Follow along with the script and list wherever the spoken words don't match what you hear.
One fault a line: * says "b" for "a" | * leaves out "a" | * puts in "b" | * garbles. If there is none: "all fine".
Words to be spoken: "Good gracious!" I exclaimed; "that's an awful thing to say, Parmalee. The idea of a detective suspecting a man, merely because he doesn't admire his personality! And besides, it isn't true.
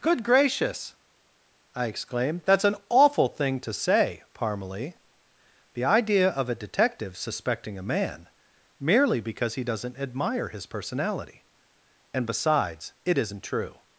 all fine